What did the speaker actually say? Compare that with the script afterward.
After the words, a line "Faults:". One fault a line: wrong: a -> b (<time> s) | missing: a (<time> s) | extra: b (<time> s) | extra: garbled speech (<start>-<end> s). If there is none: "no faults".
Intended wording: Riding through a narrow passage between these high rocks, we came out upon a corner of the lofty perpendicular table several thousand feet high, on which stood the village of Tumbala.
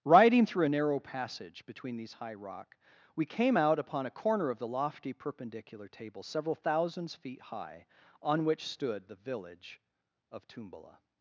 Riding through a narrow passage between these high rock, we came out upon a corner of the lofty perpendicular table several thousands feet high, on which stood the village of Tumbala.
Faults:
wrong: rocks -> rock (2.3 s)
wrong: thousand -> thousands (6.5 s)